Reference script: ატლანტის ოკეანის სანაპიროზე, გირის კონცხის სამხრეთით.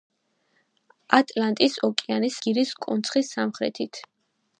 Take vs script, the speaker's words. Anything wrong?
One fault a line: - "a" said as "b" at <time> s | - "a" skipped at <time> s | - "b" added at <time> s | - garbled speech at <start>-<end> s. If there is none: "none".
- "სანაპიროზე" skipped at 2.4 s